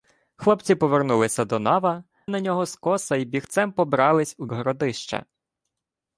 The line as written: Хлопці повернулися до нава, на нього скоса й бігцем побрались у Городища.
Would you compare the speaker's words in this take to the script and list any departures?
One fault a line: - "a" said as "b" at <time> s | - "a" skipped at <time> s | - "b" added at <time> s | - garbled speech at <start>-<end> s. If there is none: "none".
none